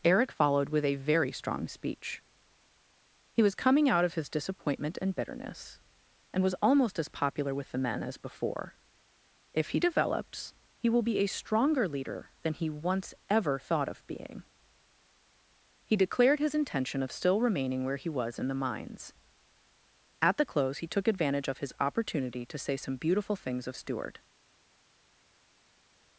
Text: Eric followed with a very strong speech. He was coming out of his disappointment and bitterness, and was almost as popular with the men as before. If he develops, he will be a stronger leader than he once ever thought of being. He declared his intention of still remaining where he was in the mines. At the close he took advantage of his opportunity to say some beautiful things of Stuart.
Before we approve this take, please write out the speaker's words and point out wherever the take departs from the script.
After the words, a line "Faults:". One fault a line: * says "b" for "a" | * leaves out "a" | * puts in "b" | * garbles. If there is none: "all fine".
Eric followed with a very strong speech. He was coming out of his disappointment and bitterness, and was almost as popular with the men as before. If he develops, he will be a stronger leader than he once ever thought of being. He declared his intention of still remaining where he was in the mines. At the close he took advantage of his opportunity to say some beautiful things of Stuart.
Faults:
all fine